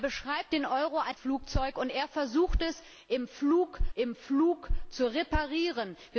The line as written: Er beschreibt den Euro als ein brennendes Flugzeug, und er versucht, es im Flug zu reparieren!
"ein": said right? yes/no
no